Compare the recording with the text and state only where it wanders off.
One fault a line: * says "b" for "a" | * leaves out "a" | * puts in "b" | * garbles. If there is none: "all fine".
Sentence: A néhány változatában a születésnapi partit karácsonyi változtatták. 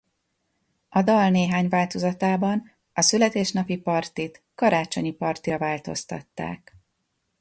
* puts in "dal"
* puts in "partira"